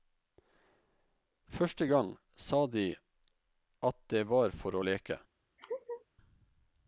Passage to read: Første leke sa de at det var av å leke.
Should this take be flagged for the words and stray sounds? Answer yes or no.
yes